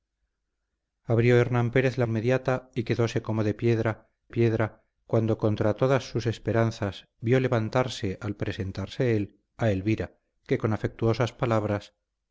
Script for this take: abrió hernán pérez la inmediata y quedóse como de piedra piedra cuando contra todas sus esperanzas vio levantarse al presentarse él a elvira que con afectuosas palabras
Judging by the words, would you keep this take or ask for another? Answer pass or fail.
pass